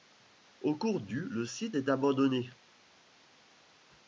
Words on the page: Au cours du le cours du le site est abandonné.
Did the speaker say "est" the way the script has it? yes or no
yes